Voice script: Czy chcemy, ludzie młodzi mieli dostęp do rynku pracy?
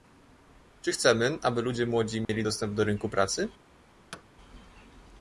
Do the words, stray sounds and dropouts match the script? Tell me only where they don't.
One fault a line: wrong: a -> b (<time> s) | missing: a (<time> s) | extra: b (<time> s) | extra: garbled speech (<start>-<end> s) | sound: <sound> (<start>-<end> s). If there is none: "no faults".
extra: aby (1.4 s)
sound: dropout (2.2-2.3 s)
sound: thud (4.1-4.2 s)